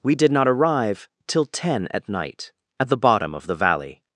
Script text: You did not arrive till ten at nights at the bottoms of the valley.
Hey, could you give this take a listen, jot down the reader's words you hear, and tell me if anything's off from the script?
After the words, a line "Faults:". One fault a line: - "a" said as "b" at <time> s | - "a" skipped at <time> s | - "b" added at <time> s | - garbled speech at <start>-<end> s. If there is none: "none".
We did not arrive till ten at night at the bottom of the valley.
Faults:
- "You" said as "We" at 0.0 s
- "nights" said as "night" at 2.1 s
- "bottoms" said as "bottom" at 3.0 s